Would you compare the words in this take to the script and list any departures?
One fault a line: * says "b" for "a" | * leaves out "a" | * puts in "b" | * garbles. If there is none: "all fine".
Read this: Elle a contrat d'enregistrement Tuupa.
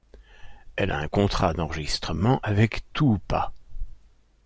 * puts in "un"
* puts in "avec"